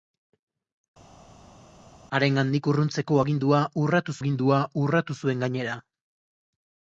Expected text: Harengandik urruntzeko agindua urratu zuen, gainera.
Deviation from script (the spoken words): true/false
true